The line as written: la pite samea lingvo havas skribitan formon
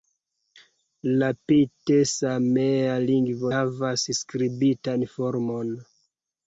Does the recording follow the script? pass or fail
pass